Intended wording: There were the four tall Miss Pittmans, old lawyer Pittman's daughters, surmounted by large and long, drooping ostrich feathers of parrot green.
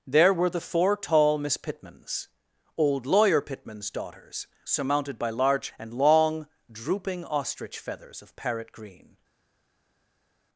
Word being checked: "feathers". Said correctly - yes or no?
yes